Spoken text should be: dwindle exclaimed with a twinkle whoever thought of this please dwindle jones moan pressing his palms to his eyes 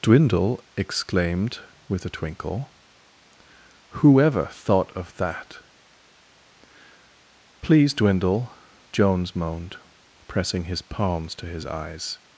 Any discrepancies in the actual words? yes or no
yes